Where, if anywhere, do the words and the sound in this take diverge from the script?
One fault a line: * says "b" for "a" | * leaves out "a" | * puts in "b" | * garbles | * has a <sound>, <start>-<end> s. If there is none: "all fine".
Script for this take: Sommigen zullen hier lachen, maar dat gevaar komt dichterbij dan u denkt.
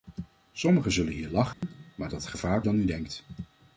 * has a dropout, 1.5-1.6 s
* leaves out "komt dichterbij"